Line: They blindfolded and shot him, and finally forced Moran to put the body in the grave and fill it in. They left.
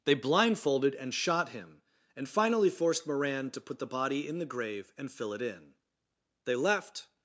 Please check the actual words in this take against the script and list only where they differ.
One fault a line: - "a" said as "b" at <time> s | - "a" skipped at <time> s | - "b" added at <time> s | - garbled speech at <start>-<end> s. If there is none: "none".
none